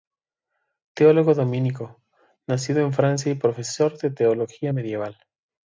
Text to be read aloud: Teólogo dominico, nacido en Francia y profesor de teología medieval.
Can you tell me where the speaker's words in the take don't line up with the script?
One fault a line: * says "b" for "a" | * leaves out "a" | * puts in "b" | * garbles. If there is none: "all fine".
all fine